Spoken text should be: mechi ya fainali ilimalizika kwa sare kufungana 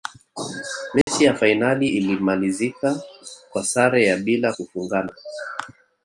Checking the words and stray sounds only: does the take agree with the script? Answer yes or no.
no